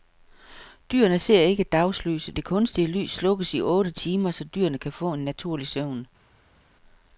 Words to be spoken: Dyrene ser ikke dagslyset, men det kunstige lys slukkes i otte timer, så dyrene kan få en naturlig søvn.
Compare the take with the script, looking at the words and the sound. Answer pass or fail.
fail